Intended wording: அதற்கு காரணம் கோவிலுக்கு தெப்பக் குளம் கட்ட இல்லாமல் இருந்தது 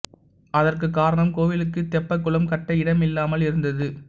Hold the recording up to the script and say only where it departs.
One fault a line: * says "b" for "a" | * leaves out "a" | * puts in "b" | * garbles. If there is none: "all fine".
* puts in "இடம்"